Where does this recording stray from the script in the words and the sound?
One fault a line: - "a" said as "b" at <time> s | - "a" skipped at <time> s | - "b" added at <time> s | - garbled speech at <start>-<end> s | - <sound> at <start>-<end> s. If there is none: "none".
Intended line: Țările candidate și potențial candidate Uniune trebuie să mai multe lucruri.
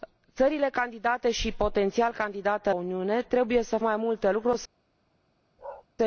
- bark at 5.6-5.9 s